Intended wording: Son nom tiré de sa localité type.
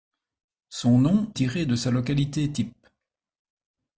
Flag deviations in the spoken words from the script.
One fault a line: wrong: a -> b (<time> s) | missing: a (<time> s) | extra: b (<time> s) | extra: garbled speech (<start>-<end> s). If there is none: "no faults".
no faults